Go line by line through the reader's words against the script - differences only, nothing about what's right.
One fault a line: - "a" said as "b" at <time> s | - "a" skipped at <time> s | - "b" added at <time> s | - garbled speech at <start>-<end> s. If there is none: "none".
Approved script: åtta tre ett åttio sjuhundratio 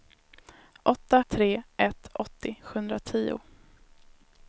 none